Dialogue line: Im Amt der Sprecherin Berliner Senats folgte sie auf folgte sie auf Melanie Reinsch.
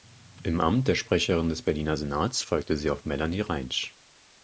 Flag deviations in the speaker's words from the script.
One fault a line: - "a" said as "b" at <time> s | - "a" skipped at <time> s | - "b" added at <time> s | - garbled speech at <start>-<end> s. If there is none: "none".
- "des" added at 1.5 s
- "folgte sie auf" skipped at 3.0 s